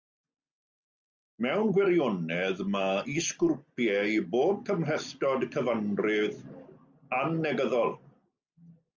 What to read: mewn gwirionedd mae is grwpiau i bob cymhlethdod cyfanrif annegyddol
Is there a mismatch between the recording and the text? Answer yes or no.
no